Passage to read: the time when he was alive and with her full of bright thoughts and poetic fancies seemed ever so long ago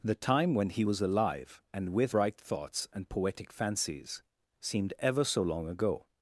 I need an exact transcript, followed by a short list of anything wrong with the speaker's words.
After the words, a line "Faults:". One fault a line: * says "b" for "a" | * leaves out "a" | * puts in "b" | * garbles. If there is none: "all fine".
the time when he was alive and with bright thoughts and poetic fancies seemed ever so long ago
Faults:
* leaves out "her full of"